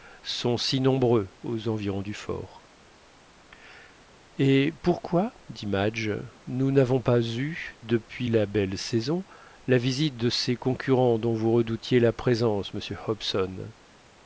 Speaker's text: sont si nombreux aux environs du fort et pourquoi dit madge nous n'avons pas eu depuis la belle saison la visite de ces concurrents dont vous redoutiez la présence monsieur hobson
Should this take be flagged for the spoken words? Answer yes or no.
no